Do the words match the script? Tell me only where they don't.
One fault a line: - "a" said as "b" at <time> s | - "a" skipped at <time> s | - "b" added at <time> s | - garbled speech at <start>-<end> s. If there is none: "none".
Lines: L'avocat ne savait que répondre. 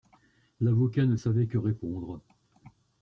none